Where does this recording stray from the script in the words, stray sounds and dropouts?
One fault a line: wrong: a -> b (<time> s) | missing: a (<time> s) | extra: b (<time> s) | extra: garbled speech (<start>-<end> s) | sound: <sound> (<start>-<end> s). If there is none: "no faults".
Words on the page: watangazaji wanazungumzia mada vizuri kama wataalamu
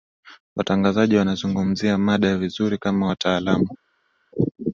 no faults